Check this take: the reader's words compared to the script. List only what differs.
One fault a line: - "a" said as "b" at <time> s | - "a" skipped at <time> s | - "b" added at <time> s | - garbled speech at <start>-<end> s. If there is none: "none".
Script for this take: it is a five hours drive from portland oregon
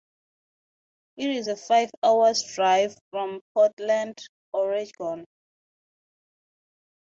none